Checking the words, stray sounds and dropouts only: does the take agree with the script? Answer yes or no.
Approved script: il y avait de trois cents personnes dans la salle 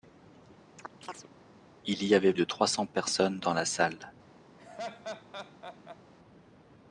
no